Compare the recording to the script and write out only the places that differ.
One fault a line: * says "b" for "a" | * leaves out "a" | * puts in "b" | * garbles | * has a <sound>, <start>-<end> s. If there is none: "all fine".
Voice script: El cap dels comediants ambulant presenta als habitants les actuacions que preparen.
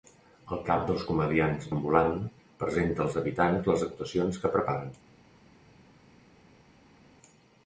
all fine